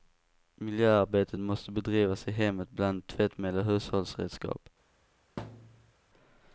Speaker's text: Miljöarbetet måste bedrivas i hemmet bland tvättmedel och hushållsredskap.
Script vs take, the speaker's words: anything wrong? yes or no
no